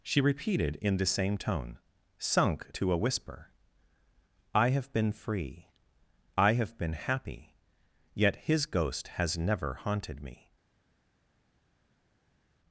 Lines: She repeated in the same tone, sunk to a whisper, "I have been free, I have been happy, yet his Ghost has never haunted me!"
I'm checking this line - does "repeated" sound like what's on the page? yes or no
yes